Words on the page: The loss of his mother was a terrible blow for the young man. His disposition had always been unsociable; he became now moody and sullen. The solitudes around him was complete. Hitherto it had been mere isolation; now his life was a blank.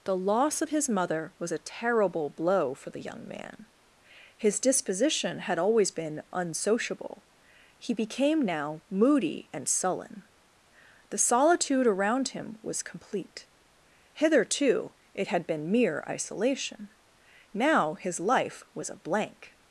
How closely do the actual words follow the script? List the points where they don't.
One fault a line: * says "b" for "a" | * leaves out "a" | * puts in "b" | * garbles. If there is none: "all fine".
* says "solitude" for "solitudes"